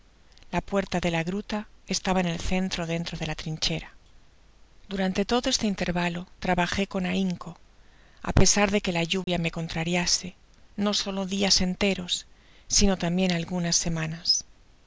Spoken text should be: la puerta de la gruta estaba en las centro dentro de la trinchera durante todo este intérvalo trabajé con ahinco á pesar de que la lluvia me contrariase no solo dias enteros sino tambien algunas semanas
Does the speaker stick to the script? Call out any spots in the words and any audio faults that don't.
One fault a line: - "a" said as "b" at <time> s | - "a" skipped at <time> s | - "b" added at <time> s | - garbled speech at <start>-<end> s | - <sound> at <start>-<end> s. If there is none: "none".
- "las" said as "el" at 2.2 s
- dropout at 9.2-9.3 s